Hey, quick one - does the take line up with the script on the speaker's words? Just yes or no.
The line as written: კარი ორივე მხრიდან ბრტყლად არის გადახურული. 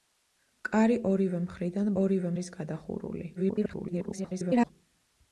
no